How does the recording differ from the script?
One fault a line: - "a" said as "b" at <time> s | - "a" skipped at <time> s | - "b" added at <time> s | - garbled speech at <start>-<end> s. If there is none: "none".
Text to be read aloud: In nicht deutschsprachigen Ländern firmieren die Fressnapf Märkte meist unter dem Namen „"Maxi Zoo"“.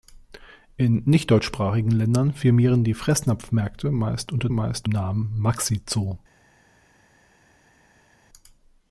- "dem" said as "meist" at 4.5 s